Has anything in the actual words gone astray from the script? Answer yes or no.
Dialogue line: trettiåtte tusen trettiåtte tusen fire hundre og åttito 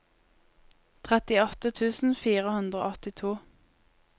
yes